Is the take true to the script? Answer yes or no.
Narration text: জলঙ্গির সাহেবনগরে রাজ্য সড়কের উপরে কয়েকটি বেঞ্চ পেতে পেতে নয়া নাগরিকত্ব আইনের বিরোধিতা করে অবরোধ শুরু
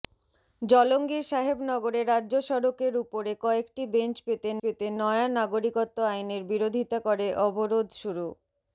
yes